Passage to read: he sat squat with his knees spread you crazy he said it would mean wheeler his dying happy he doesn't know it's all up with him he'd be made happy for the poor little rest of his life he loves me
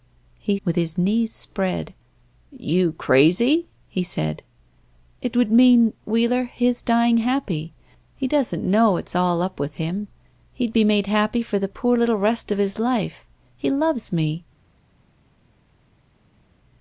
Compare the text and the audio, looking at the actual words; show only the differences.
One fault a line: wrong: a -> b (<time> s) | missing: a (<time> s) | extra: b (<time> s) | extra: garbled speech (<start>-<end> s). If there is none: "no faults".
missing: sat squat (0.6 s)